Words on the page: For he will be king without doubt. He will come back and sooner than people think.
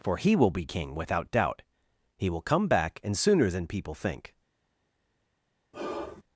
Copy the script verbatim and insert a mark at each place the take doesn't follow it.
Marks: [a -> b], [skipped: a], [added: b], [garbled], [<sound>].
For he will be king without doubt. He will come back and sooner than people think. [sigh]